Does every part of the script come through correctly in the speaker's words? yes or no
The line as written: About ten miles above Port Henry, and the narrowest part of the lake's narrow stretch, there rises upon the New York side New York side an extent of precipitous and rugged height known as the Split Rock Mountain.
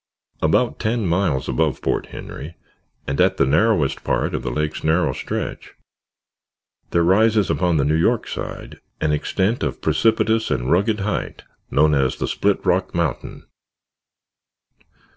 no